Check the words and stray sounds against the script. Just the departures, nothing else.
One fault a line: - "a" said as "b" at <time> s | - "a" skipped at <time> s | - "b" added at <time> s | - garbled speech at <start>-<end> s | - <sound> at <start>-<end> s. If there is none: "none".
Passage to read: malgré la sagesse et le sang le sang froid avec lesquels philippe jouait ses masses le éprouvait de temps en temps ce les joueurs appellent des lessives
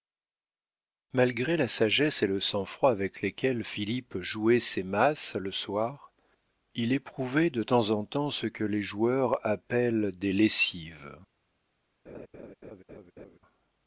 - "le sang" skipped at 2.6 s
- "soir il" added at 5.5 s
- "que" added at 8.5 s
- laugh at 12.1-13.4 s